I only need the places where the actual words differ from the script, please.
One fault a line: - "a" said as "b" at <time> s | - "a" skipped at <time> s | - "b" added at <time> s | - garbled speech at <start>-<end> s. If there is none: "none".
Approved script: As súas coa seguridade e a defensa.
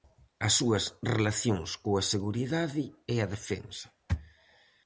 - "relacións" added at 1.1 s